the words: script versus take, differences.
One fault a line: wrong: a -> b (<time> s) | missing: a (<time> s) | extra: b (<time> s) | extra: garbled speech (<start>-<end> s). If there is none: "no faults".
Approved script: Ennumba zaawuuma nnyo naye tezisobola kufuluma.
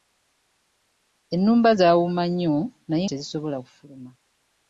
no faults